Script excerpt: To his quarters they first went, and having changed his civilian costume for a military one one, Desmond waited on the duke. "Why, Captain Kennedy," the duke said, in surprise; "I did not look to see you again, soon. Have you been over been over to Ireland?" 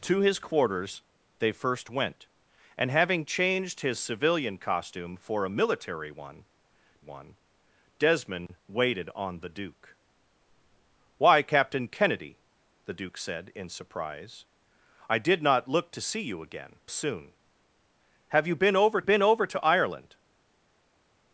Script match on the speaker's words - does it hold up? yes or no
yes